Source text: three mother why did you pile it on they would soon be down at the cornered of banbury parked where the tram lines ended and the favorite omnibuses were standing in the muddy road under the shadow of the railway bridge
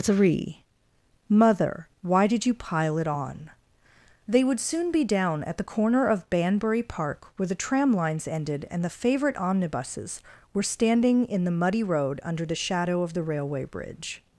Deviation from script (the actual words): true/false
true